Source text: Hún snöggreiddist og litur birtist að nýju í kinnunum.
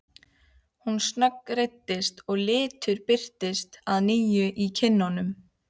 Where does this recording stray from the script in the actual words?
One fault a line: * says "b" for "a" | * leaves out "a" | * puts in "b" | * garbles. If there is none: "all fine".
all fine